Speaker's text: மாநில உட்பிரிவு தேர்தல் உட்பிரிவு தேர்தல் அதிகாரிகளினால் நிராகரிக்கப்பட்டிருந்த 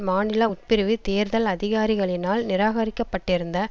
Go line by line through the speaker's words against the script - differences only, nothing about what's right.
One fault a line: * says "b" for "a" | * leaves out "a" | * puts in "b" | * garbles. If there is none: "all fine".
* leaves out "உட்பிரிவு தேர்தல்"